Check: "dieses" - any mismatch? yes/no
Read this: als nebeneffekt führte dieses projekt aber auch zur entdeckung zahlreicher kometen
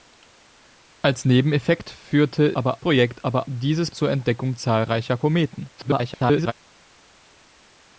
yes